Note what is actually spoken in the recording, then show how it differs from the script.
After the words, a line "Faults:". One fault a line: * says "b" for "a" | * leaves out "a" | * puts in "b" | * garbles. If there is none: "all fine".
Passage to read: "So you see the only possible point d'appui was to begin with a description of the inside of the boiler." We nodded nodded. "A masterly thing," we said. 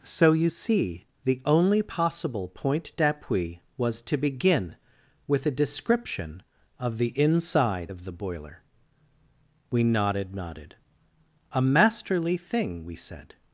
"So you see the only possible point d'appui was to begin with a description of the inside of the boiler." We nodded nodded. "A masterly thing," we said.
Faults:
all fine